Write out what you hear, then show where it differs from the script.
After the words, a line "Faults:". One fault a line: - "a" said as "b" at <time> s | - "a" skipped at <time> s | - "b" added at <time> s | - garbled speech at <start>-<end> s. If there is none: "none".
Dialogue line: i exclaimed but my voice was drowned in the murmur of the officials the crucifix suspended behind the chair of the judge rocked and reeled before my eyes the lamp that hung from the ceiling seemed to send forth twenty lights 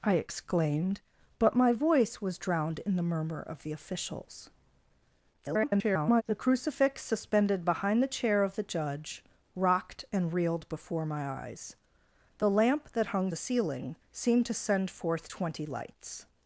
i exclaimed but my voice was drowned in the murmur of the officials [garbled] the crucifix suspended behind the chair of the judge rocked and reeled before my eyes the lamp that hung the ceiling seemed to send forth twenty lights
Faults:
- garbled speech at 5.3-6.2 s
- "from" skipped at 13.3 s